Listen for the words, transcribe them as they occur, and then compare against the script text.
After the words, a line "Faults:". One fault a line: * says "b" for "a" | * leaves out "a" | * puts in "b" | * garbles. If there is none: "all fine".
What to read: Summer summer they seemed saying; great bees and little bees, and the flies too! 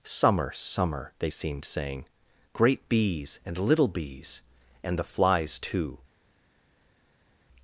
Summer summer they seemed saying; great bees and little bees, and the flies too!
Faults:
all fine